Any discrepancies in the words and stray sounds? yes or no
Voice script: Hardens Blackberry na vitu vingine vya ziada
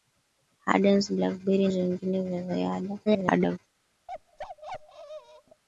yes